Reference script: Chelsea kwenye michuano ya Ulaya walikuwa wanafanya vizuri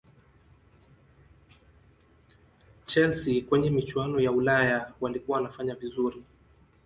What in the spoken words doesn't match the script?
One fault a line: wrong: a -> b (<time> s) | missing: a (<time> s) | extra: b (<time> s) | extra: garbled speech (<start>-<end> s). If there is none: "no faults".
no faults